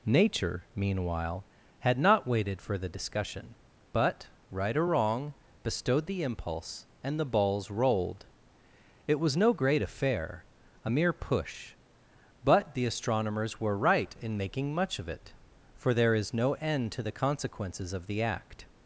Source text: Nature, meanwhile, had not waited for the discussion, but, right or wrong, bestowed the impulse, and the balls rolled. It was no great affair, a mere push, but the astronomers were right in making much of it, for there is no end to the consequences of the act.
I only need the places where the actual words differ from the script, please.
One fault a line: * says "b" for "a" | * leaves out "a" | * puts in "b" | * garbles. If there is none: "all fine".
all fine